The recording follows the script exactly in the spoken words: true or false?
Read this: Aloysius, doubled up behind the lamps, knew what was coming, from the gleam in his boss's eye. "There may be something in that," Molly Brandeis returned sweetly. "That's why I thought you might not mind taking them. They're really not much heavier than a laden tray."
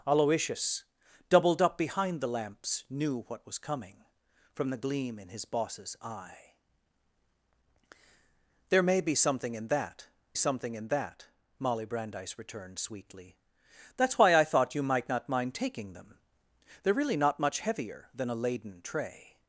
false